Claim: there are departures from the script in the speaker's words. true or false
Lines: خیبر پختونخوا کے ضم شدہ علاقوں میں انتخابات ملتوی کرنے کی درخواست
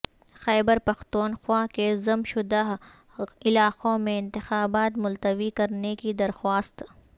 false